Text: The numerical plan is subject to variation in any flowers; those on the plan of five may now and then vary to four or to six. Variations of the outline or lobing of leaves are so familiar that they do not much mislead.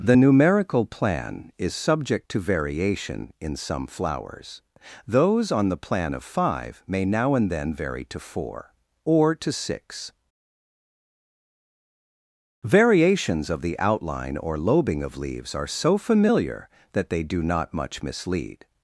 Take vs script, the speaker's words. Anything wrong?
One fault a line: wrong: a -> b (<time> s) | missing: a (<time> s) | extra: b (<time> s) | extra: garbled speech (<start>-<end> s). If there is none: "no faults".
wrong: any -> some (3.6 s)